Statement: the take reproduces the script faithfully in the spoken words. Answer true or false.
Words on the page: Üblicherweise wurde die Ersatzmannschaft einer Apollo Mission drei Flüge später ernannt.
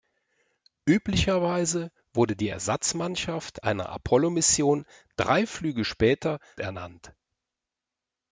true